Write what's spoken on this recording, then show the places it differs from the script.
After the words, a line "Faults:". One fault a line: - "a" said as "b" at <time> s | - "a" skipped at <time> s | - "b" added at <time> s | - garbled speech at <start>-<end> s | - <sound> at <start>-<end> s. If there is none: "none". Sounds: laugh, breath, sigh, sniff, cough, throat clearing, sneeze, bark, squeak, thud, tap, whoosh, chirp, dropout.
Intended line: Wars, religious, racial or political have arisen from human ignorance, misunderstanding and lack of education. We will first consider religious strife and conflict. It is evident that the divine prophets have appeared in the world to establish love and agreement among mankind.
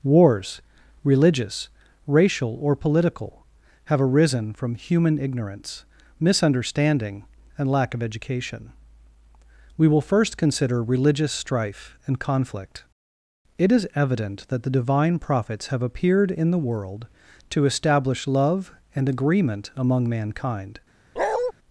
Wars, religious, racial or political have arisen from human ignorance, misunderstanding and lack of education. We will first consider religious strife and conflict. It is evident that the divine prophets have appeared in the world to establish love and agreement among mankind.
Faults:
- bark at 21.2-21.5 s